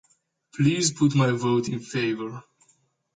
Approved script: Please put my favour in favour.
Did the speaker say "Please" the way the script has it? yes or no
yes